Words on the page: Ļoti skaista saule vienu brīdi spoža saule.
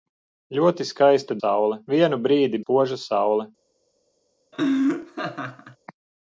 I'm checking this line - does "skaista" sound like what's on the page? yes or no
yes